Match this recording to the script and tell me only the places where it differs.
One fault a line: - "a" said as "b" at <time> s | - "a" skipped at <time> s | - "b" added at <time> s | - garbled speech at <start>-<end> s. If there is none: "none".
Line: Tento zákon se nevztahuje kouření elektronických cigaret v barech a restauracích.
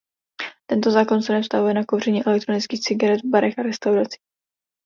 - "na" added at 1.7 s